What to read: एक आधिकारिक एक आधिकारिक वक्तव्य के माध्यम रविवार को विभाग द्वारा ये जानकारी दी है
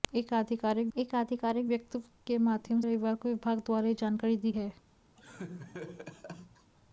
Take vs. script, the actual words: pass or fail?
pass